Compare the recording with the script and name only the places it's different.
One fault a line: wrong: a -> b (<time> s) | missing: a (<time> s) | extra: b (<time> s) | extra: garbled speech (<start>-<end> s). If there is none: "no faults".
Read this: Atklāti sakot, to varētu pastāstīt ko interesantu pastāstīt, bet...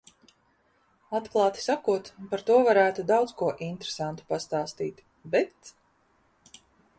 extra: par (2.3 s)
wrong: pastāstīt -> daudz (3.1 s)